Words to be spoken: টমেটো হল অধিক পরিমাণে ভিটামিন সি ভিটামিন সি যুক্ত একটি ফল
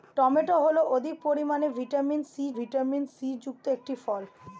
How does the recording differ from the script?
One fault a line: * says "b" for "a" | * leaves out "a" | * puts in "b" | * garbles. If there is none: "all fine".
all fine